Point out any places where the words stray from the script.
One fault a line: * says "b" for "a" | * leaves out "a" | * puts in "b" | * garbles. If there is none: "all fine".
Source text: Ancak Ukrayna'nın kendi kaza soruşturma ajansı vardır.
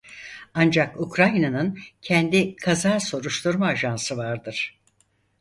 all fine